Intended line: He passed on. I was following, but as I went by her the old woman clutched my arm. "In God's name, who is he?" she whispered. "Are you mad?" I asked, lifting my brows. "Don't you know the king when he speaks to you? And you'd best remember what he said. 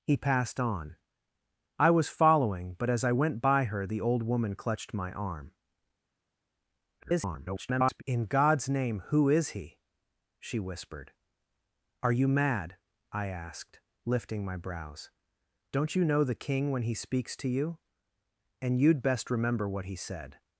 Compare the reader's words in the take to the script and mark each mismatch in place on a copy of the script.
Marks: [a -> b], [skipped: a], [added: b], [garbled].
He passed on. I was following, but as I went by her the old woman clutched my arm. [garbled] "In God's name, who is he?" she whispered. "Are you mad?" I asked, lifting my brows. "Don't you know the king when he speaks to you? And you'd best remember what he said.